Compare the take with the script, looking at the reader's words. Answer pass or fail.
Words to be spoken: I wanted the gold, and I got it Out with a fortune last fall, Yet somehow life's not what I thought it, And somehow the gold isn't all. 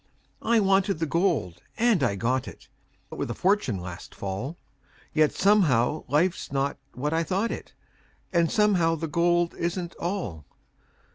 pass